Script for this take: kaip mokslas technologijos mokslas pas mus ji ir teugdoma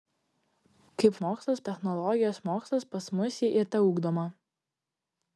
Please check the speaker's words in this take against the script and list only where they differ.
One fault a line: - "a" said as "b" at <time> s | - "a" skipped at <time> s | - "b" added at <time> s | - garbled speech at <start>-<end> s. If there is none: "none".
none